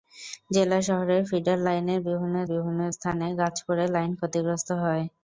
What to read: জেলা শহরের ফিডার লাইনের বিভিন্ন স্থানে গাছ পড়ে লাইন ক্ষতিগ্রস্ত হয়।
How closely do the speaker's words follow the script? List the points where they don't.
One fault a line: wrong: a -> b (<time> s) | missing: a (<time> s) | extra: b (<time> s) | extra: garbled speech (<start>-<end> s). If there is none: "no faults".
extra: বিভিন্ন (2.5 s)